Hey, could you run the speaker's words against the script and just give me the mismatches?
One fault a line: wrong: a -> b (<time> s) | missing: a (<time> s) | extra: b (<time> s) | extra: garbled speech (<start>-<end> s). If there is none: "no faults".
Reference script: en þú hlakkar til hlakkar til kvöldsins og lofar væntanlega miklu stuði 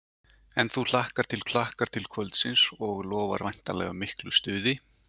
no faults